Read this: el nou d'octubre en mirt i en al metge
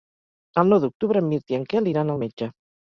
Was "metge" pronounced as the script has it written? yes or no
yes